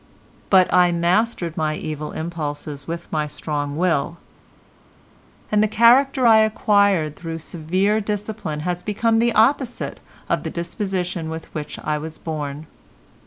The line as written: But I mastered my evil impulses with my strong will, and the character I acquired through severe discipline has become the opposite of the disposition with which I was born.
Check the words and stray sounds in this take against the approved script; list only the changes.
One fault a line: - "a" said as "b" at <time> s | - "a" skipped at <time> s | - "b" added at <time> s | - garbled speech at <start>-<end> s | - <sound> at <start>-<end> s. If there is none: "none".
none